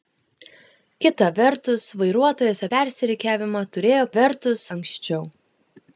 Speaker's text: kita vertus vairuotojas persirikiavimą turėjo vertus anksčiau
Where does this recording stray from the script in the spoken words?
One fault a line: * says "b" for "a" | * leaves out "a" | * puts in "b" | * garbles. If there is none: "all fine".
all fine